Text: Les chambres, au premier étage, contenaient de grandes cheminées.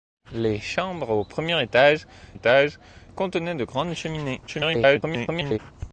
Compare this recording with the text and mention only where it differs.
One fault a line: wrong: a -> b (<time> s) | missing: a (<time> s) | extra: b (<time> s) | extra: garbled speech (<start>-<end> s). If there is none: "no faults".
extra: étage (2.3 s)
extra: garbled speech (4.5-5.6 s)